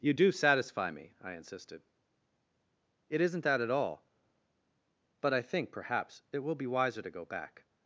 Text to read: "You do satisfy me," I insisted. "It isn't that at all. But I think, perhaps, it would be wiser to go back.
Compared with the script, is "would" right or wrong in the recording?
wrong